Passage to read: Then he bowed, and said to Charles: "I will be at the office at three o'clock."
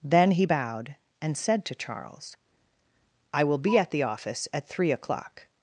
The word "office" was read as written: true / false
true